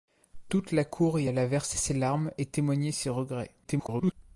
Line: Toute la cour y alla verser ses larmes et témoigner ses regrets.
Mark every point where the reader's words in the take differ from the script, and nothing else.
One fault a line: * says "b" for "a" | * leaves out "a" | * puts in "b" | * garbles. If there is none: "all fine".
* garbles